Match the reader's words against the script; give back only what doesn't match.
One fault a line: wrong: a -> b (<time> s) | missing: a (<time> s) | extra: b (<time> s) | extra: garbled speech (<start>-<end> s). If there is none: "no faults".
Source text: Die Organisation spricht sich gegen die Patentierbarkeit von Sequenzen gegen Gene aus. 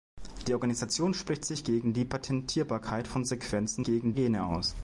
no faults